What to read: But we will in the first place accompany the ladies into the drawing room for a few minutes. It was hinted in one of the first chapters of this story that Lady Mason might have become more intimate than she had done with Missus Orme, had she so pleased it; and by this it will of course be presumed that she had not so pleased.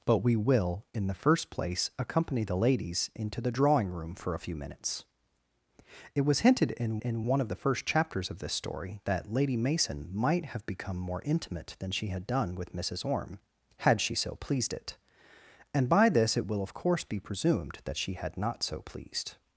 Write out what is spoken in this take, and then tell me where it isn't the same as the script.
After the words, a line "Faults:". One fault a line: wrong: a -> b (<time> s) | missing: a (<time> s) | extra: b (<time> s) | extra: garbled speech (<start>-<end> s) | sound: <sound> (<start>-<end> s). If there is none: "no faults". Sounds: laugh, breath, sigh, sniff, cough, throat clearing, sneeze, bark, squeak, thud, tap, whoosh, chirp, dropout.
But we will in the first place accompany the ladies into the drawing room for a few minutes. It was hinted in in one of the first chapters of this story that Lady Mason might have become more intimate than she had done with Missus Orme, had she so pleased it; and by this it will of course be presumed that she had not so pleased.
Faults:
extra: in (7.0 s)